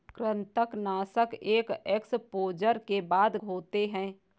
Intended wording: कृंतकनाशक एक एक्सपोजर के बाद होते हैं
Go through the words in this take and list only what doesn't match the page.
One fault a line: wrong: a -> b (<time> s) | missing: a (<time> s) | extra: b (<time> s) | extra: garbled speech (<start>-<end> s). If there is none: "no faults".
no faults